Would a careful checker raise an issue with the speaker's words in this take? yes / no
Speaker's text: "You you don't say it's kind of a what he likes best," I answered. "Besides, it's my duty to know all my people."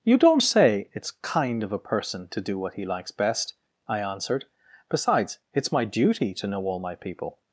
yes